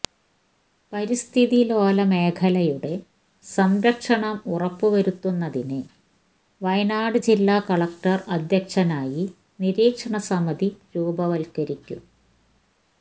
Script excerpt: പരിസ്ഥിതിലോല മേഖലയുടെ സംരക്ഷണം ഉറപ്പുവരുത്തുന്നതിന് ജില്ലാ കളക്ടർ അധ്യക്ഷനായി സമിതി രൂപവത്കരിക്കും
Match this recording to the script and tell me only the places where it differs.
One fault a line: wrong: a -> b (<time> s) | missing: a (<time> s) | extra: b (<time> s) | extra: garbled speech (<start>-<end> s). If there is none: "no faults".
extra: വയനാട് (6.6 s)
extra: നിരീക്ഷണ (9.6 s)